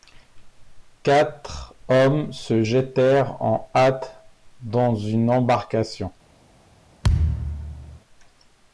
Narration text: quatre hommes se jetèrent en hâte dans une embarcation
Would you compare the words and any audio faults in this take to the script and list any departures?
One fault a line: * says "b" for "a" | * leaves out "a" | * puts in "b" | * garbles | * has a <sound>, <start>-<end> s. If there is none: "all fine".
* has a thud, 7.0-8.0 s